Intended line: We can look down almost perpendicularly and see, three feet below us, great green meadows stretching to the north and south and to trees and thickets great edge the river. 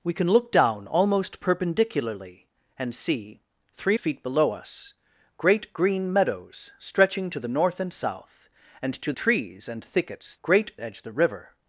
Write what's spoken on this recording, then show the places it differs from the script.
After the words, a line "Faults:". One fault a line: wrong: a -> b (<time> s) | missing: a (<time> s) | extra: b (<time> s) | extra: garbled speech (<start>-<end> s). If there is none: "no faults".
We can look down almost perpendicularly and see, three feet below us, great green meadows stretching to the north and south and to trees and thickets great edge the river.
Faults:
no faults